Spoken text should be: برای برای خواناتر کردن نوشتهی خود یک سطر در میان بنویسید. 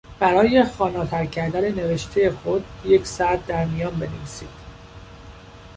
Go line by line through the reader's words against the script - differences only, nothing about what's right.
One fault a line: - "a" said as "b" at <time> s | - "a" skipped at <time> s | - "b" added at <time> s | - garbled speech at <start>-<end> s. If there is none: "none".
- "برای" skipped at 0.6 s